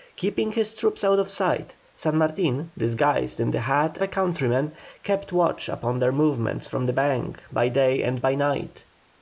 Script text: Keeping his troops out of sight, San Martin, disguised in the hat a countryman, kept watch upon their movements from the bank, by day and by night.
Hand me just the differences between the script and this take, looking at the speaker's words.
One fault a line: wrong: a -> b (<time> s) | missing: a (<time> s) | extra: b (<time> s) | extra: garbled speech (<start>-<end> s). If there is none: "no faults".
no faults